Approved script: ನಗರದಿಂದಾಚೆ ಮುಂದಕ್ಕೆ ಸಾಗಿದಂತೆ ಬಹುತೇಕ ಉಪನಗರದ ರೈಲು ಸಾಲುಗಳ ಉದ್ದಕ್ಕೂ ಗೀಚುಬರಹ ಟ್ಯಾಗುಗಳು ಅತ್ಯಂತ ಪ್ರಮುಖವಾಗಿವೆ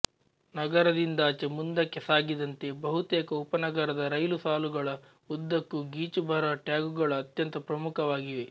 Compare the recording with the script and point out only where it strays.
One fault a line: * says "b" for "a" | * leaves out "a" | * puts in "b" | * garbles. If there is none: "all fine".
all fine